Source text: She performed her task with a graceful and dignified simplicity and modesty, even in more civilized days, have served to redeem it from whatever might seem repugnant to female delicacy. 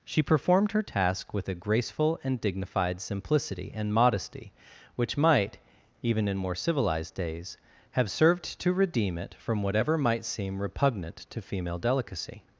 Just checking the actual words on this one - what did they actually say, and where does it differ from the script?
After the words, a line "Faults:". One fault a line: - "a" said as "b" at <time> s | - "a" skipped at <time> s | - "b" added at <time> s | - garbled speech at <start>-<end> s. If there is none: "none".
She performed her task with a graceful and dignified simplicity and modesty, which might, even in more civilized days, have served to redeem it from whatever might seem repugnant to female delicacy.
Faults:
- "which might" added at 4.9 s